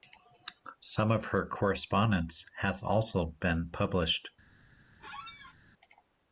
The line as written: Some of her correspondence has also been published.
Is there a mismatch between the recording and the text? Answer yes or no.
no